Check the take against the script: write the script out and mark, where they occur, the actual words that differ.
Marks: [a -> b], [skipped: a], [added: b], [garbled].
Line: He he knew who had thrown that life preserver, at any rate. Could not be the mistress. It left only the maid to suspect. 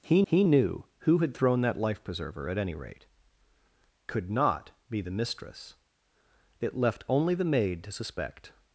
He he knew who had thrown that life preserver, at any rate. Could not be the mistress. It left only the maid to suspect.